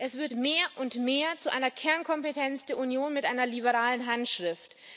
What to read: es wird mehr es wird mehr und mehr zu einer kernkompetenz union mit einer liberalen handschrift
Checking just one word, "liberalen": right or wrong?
right